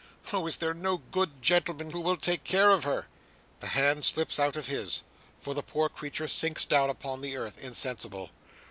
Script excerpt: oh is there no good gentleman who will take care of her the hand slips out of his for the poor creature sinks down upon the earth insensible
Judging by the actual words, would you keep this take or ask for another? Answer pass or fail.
pass